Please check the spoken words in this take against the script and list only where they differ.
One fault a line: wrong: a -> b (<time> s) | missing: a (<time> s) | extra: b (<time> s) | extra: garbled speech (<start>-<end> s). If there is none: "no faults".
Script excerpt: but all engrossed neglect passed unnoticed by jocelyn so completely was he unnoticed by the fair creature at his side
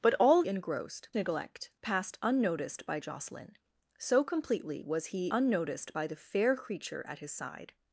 no faults